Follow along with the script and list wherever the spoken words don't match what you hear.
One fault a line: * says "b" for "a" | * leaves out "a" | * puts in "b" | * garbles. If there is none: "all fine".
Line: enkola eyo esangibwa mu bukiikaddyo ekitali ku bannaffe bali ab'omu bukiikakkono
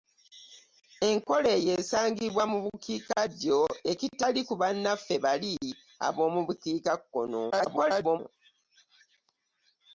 * garbles